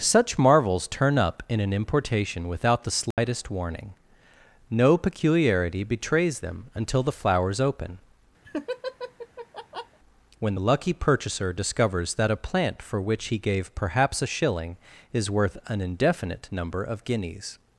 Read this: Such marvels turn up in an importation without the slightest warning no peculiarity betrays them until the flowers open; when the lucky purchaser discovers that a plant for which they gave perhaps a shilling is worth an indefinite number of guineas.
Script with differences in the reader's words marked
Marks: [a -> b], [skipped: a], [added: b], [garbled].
Such marvels turn up in an importation without the slightest warning no peculiarity betrays them until the flowers open; when the lucky purchaser discovers that a plant for which [they -> he] gave perhaps a shilling is worth an indefinite number of guineas.